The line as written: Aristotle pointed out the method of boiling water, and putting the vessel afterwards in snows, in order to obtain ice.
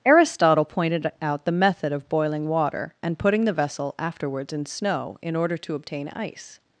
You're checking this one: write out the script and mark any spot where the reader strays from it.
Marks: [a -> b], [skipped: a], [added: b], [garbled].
Aristotle pointed out the method of boiling water, and putting the vessel afterwards in [snows, -> snow] in order to obtain ice.